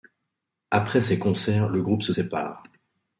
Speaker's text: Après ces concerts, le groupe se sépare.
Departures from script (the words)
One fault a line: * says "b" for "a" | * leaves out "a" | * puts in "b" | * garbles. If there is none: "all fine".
all fine